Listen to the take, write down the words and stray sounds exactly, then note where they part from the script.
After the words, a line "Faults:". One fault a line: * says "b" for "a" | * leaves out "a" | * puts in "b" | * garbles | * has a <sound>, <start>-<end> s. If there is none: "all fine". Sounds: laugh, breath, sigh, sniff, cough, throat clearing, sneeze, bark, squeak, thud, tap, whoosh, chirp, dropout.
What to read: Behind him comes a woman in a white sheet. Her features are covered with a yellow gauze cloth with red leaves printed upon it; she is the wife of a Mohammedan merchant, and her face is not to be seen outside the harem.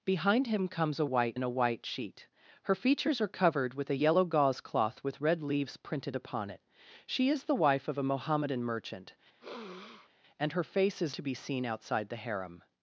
Behind him comes a white in a white sheet. Her features are covered with a yellow gauze cloth with red leaves printed upon it; she is the wife of a Mohammedan merchant, and her face is to be seen outside the harem.
Faults:
* says "white" for "woman"
* has a sniff, 9.4-10.1 s
* leaves out "not"